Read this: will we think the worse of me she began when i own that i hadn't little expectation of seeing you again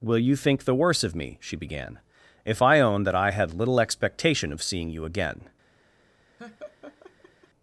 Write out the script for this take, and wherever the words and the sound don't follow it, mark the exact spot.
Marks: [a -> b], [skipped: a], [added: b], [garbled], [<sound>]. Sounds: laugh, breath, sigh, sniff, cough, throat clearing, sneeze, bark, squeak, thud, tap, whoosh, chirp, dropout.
will [we -> you] think the worse of me she began [when -> if] i own that i [hadn't -> had] little expectation of seeing you again [laugh]